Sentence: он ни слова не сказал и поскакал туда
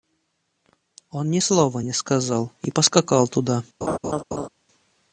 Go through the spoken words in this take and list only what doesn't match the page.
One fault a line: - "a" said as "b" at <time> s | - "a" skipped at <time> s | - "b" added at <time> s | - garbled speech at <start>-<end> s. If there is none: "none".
none